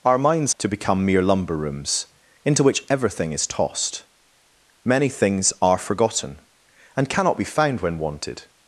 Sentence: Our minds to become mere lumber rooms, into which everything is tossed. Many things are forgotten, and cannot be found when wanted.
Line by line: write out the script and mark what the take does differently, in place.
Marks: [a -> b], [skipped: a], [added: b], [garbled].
Our minds to become mere lumber rooms, into which everything is tossed. Many things are forgotten, and cannot be found when wanted.